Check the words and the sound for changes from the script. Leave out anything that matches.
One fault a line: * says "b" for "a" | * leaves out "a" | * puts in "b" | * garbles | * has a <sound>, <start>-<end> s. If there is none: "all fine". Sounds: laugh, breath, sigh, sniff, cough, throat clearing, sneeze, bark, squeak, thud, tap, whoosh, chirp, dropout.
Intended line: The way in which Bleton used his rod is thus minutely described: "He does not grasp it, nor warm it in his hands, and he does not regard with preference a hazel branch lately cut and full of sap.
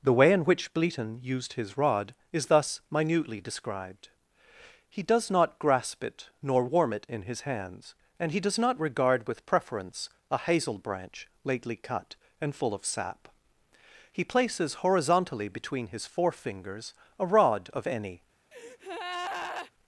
* puts in "He places horizontally between his forefingers a rod of any"
* has a breath, 18.5-19.7 s